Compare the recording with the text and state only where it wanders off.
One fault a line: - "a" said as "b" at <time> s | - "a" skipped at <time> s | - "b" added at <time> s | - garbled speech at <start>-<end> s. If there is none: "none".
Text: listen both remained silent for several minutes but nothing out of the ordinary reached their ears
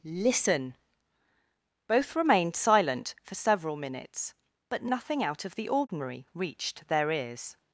none